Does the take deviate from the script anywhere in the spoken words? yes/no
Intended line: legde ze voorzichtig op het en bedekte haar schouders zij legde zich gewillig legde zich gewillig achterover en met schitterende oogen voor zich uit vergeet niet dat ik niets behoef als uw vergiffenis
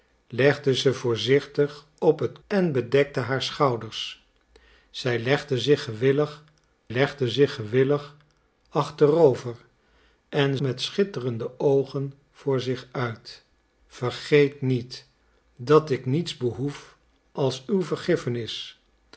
no